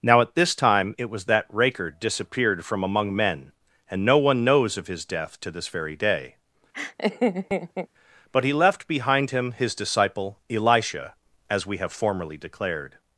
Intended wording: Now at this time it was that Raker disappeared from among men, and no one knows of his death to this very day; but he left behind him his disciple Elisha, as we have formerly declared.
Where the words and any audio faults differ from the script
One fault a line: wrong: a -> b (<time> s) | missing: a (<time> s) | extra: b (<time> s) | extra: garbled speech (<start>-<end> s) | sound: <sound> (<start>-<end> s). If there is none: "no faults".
sound: laugh (6.7-7.9 s)